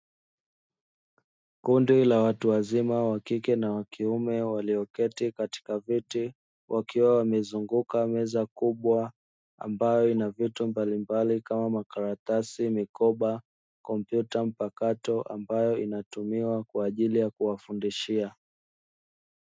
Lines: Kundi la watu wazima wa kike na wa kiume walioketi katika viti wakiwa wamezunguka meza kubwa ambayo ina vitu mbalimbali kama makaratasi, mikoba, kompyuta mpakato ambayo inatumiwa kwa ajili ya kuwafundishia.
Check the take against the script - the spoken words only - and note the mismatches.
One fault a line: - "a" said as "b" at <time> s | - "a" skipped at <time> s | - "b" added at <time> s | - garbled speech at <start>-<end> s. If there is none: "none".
none